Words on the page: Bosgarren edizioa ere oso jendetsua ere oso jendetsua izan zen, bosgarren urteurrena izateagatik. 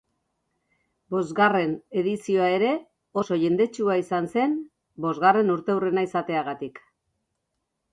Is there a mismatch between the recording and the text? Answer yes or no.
yes